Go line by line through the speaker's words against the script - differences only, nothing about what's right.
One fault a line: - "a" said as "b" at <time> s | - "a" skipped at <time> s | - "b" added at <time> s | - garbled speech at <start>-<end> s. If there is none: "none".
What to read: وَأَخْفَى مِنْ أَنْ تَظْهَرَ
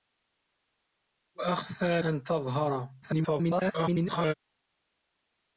- "مِنْ" skipped at 2.0 s
- garbled speech at 3.0-4.3 s